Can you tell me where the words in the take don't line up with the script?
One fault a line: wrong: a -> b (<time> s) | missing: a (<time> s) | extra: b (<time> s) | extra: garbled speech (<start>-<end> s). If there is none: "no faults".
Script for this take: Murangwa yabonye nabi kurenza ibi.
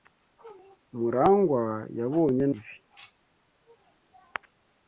missing: nabi kurenza (2.5 s)